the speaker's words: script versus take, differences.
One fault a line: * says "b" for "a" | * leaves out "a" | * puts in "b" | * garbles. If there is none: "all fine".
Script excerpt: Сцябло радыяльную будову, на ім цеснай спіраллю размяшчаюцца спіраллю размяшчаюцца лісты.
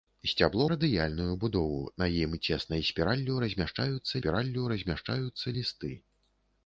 all fine